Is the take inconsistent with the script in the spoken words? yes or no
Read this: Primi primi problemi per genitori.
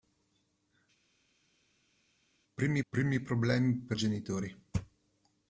no